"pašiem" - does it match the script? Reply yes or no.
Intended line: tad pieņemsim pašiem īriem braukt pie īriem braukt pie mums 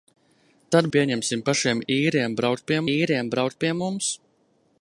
yes